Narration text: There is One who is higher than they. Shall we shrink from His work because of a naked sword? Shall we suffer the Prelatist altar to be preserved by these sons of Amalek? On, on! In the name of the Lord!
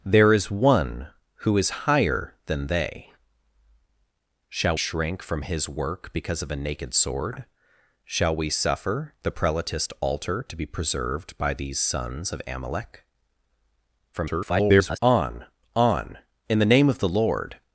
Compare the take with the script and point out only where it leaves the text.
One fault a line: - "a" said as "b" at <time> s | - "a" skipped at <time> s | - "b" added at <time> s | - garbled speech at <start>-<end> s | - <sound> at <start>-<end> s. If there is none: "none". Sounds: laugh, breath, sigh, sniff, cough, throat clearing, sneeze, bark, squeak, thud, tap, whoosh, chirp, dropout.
- "we" skipped at 4.8 s
- garbled speech at 14.1-15.0 s